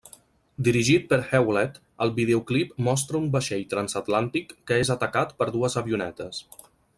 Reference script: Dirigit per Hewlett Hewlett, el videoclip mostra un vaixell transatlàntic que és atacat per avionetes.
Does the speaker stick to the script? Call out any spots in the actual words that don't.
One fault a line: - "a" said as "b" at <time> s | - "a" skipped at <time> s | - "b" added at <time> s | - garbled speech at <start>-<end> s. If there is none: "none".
- "Hewlett" skipped at 1.8 s
- "dues" added at 5.6 s